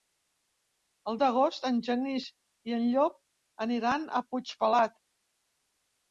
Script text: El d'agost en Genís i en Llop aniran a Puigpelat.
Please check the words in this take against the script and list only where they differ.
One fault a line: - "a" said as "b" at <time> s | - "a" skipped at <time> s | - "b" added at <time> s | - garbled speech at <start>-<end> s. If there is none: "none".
none